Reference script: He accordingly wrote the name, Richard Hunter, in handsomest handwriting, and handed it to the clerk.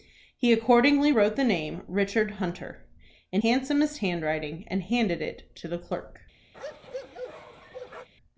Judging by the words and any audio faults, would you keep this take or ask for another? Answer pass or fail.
fail